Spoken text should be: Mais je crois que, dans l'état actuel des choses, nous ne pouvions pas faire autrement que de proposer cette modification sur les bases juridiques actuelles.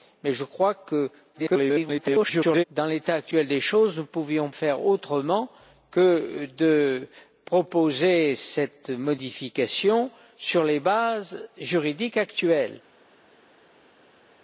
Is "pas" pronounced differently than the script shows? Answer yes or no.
yes